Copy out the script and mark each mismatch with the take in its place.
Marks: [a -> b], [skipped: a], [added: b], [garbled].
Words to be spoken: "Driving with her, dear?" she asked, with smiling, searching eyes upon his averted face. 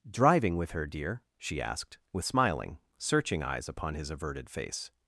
"Driving with her, dear?" she asked, with smiling, searching eyes upon his averted face.